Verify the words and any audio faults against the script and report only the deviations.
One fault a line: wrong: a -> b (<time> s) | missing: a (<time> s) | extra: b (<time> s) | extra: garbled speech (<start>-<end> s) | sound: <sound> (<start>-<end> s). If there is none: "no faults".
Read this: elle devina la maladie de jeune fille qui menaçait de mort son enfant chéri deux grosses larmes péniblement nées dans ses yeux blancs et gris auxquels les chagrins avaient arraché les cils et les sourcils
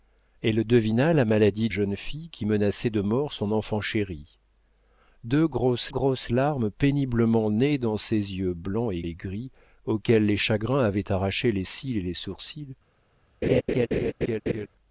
missing: de (1.7 s)
extra: grosses (5.9 s)
extra: et (9.0 s)
sound: laugh (13.4-14.7 s)